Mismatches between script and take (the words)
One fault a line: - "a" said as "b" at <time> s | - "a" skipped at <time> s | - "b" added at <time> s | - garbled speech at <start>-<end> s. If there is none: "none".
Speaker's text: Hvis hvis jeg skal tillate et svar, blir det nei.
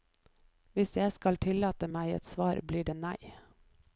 - "hvis" skipped at 1.0 s
- "meg" added at 2.0 s